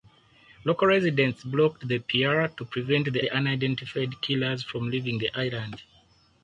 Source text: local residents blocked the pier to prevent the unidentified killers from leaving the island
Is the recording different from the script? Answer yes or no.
yes